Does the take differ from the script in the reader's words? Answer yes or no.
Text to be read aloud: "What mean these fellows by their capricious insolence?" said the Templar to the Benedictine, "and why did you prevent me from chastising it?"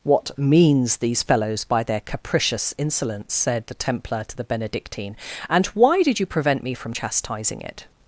yes